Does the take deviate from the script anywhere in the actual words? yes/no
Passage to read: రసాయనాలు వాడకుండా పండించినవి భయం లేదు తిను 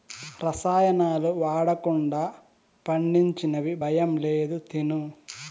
no